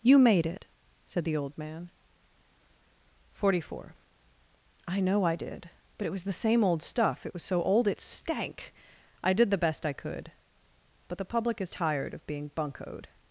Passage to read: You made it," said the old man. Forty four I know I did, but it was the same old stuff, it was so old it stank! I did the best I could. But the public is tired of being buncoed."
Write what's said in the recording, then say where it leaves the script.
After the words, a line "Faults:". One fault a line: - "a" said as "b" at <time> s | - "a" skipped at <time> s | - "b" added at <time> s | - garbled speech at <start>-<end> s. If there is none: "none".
You made it," said the old man. Forty four I know I did, but it was the same old stuff, it was so old it stank! I did the best I could. But the public is tired of being buncoed."
Faults:
none